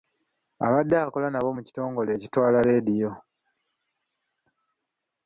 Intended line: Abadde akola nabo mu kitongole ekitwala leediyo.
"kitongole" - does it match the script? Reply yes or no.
yes